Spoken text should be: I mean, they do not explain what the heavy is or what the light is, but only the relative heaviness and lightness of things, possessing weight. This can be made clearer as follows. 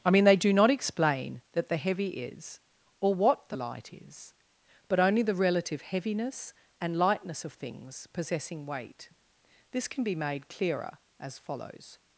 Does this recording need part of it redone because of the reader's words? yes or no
yes